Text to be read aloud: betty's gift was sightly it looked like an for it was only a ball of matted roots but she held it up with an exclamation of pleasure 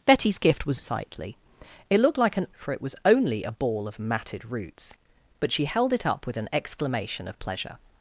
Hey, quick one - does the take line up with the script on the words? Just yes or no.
yes